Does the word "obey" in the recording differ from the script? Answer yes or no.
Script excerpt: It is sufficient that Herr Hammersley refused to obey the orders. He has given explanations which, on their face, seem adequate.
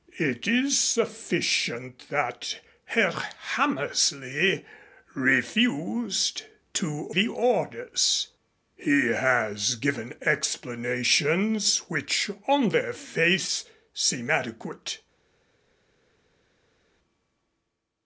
yes